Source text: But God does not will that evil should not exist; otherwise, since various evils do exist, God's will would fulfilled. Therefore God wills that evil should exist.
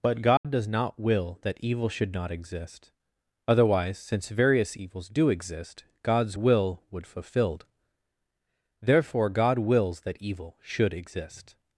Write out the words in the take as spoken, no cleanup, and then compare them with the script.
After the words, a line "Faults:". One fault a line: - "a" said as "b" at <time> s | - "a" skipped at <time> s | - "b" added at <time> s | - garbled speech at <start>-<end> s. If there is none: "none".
But God does not will that evil should not exist; otherwise, since various evils do exist, God's will would fulfilled. Therefore God wills that evil should exist.
Faults:
none